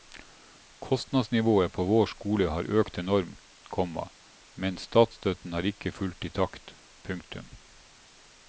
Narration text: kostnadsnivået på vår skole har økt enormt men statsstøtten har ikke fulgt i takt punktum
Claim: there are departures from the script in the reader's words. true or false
true